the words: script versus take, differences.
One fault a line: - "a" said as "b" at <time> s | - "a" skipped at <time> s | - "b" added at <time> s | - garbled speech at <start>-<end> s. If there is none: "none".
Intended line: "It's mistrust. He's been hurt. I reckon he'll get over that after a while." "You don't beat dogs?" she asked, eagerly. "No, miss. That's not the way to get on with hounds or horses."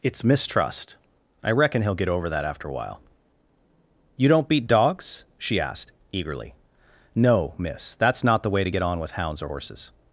- "He's been hurt" skipped at 1.0 s